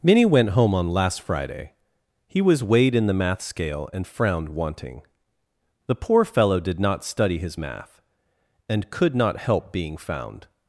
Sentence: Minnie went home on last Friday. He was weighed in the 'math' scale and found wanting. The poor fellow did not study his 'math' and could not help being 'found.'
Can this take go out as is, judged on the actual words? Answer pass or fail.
fail